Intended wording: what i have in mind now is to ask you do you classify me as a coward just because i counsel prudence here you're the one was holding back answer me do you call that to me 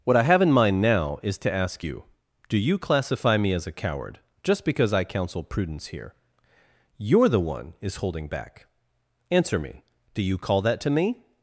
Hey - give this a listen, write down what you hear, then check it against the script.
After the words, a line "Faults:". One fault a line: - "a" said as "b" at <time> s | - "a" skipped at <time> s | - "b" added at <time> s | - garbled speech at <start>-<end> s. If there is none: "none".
what i have in mind now is to ask you do you classify me as a coward just because i counsel prudence here you're the one is holding back answer me do you call that to me
Faults:
- "was" said as "is" at 7.8 s